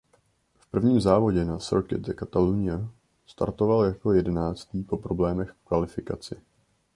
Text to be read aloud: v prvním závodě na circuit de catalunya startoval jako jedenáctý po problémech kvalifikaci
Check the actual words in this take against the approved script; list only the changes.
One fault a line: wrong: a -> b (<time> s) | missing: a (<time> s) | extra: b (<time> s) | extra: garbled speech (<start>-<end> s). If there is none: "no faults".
extra: v (5.5 s)